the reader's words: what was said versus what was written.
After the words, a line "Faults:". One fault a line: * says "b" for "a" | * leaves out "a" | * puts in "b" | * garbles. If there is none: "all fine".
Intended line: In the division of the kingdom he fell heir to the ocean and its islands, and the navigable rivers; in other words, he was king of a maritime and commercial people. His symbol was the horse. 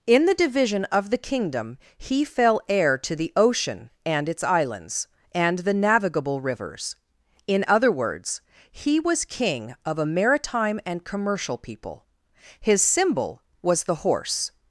In the division of the kingdom he fell heir to the ocean and its islands, and the navigable rivers; in other words, he was king of a maritime and commercial people. His symbol was the horse.
Faults:
all fine